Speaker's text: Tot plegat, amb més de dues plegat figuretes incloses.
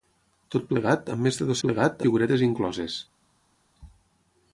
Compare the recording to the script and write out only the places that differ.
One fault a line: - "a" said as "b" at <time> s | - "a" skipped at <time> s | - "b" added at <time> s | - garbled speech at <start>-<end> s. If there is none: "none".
none